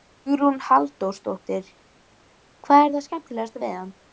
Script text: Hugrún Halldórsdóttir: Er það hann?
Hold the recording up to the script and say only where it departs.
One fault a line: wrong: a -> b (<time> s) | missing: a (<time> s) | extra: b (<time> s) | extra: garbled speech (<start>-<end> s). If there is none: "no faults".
extra: Hvað (2.7 s)
extra: skemmtilegasta við (3.1 s)